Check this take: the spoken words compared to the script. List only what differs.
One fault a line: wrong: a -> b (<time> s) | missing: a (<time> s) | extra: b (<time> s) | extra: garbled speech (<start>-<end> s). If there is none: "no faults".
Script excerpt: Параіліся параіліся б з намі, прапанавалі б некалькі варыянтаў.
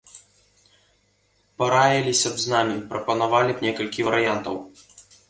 missing: параіліся (2.3 s)